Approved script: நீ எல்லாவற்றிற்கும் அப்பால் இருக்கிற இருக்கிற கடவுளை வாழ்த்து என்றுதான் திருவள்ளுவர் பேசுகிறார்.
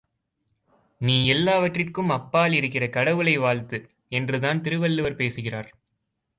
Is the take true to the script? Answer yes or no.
no